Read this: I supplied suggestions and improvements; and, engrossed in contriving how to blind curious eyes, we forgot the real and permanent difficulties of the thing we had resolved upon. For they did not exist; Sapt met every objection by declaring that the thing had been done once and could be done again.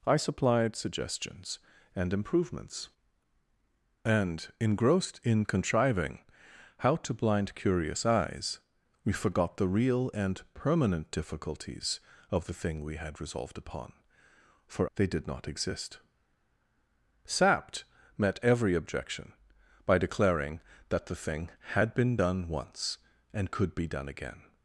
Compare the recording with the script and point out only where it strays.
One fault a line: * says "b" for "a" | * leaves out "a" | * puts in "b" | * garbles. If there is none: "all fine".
all fine